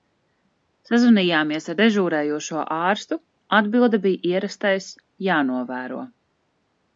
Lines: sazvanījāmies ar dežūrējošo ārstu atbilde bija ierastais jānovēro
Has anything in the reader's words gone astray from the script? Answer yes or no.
no